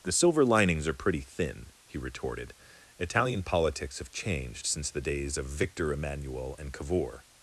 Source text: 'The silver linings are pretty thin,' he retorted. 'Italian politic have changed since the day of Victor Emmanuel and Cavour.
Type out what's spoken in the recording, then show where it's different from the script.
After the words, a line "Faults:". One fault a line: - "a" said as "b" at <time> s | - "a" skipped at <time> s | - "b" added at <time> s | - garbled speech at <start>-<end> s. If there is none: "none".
'The silver linings are pretty thin,' he retorted. 'Italian politics have changed since the days of Victor Emmanuel and Cavour.
Faults:
- "politic" said as "politics" at 3.4 s
- "day" said as "days" at 5.0 s